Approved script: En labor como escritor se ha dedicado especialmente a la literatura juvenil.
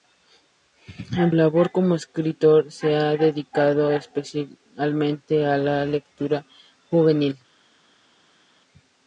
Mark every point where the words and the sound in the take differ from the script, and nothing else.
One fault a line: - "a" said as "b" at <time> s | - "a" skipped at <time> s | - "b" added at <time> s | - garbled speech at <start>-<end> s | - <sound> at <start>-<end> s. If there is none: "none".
none